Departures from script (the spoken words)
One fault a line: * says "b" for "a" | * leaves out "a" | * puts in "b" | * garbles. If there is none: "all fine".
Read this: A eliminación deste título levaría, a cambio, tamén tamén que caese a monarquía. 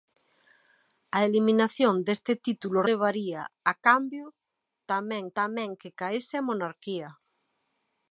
all fine